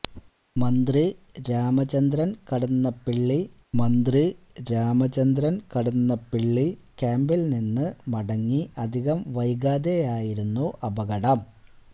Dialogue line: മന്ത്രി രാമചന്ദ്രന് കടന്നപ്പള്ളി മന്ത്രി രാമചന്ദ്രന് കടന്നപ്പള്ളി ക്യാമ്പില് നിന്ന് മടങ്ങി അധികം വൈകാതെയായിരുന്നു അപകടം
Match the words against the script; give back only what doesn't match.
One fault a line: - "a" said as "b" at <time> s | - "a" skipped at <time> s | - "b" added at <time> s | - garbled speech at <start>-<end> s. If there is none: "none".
none